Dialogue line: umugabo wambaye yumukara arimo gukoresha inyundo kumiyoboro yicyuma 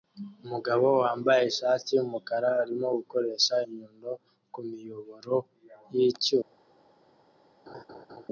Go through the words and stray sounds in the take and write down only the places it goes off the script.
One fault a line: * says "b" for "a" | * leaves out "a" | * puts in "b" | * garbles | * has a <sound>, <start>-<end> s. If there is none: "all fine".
* puts in "ishati"
* has a laugh, 7.7-8.3 s